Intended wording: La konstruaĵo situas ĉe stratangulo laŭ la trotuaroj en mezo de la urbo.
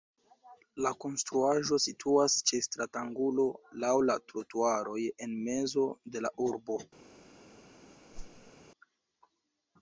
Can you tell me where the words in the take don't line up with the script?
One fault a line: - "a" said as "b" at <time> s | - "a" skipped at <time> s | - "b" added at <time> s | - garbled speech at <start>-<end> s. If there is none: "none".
none